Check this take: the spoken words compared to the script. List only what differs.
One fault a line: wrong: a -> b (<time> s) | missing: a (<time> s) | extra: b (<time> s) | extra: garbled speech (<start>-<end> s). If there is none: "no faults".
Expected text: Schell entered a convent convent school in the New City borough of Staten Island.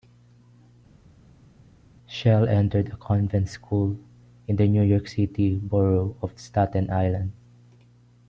missing: convent (3.5 s)
extra: York (4.8 s)